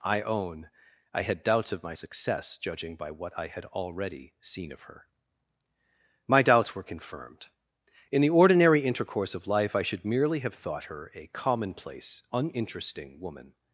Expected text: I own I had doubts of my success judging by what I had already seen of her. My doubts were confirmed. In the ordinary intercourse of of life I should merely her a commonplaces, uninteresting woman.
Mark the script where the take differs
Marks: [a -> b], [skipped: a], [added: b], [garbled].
I own I had doubts of my success judging by what I had already seen of her. My doubts were confirmed. In the ordinary intercourse of [skipped: of] life I should merely [added: have thought] her a [commonplaces, -> commonplace] uninteresting woman.